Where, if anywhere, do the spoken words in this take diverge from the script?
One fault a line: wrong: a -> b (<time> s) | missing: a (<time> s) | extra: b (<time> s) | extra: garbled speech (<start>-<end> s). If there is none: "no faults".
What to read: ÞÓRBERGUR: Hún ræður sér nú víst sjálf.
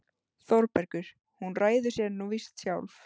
no faults